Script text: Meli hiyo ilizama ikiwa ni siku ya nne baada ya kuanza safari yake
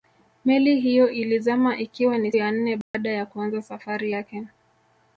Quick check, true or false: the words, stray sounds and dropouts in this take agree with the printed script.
false